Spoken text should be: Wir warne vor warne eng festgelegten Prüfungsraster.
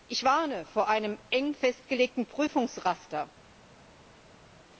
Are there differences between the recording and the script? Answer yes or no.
yes